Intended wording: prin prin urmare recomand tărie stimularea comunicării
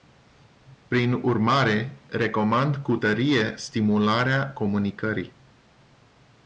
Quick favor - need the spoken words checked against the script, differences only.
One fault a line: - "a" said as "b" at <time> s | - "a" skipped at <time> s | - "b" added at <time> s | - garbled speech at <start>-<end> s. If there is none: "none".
- "prin" skipped at 1.1 s
- "cu" added at 2.8 s